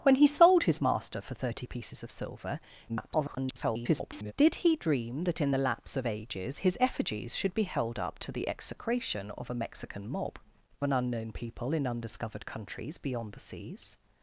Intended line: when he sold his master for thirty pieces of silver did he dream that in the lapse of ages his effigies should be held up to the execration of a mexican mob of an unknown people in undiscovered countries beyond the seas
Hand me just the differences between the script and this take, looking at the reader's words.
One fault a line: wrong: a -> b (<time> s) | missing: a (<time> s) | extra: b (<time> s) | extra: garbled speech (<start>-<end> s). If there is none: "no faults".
extra: garbled speech (2.9-4.3 s)
missing: of (10.4 s)